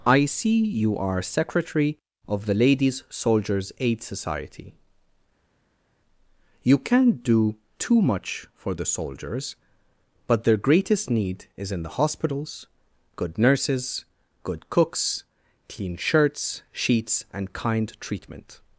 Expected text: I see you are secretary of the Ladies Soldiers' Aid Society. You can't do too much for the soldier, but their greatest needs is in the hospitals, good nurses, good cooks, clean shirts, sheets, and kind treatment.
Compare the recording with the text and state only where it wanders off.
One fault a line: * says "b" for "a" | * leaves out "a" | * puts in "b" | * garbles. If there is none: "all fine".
* says "soldiers" for "soldier"
* says "need" for "needs"